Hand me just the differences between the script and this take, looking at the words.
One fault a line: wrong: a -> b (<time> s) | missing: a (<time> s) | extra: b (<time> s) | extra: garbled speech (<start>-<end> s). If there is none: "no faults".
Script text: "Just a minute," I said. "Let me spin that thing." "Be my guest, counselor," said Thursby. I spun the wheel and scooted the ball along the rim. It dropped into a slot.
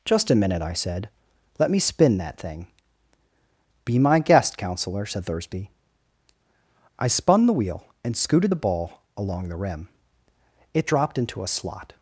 no faults